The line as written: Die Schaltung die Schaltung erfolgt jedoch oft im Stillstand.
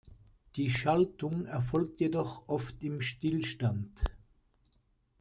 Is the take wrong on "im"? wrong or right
right